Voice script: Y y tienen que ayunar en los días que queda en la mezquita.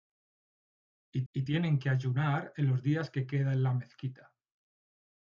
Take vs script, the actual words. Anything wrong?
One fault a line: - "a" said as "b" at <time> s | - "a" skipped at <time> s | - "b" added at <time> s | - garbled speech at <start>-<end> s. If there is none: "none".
none